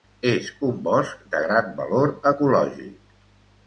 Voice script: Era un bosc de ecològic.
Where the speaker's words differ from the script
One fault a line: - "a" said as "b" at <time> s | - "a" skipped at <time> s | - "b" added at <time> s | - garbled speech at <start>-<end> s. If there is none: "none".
- "Era" said as "És" at 0.3 s
- "gran valor" added at 1.5 s